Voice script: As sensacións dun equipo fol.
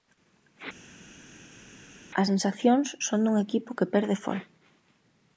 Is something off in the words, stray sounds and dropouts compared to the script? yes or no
yes